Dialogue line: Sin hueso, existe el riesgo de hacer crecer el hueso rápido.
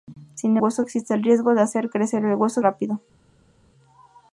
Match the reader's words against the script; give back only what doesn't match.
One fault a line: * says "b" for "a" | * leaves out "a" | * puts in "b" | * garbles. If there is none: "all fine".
all fine